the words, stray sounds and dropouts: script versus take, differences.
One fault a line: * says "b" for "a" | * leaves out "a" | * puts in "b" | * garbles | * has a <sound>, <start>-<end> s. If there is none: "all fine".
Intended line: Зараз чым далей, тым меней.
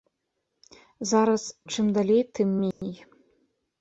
* has a dropout, 2.7-2.8 s